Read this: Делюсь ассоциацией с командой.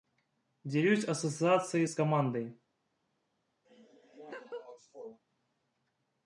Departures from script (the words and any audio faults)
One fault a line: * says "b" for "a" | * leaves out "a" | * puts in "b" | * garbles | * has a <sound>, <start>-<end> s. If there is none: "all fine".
* has a laugh, 3.6-5.2 s